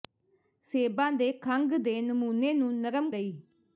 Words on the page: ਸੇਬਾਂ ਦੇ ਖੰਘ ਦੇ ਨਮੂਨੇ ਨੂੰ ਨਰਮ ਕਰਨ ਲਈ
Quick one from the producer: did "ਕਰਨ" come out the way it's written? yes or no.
no